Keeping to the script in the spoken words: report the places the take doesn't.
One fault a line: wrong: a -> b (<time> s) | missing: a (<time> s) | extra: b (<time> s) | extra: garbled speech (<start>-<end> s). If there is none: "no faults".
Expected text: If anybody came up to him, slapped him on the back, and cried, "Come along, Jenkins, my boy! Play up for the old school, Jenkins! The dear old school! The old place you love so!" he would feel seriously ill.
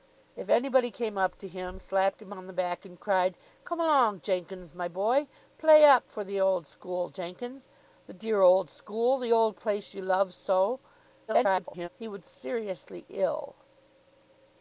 extra: garbled speech (11.3-11.9 s)
missing: feel (12.3 s)